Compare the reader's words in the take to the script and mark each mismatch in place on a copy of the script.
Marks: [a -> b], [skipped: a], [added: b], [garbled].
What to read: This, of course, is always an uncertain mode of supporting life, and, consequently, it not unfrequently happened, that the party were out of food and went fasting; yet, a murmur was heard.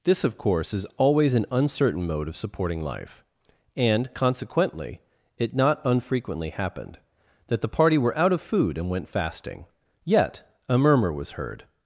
This, of course, is always an uncertain mode of supporting life, and, consequently, it not unfrequently happened, that the party were out of food and went fasting; yet, a murmur was heard.